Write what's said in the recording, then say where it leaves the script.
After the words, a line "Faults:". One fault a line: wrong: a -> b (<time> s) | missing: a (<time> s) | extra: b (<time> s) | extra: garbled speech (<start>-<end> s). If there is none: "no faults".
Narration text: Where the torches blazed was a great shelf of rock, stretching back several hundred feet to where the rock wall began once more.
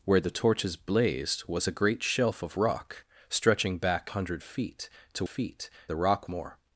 Where the torches blazed was a great shelf of rock, stretching back hundred feet to feet the rock more.
Faults:
missing: several (4.1 s)
wrong: where -> feet (5.2 s)
missing: wall began once (6.3 s)